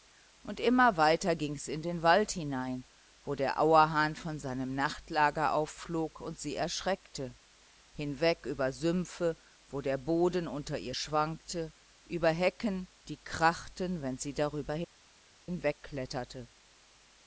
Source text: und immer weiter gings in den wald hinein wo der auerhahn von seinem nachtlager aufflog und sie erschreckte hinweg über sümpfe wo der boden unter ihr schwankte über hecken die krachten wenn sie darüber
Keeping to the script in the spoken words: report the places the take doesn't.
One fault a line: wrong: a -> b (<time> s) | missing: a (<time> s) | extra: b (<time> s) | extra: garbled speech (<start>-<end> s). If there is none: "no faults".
no faults